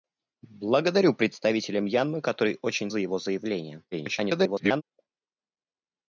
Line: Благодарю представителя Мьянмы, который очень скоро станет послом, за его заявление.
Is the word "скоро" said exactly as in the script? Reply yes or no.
no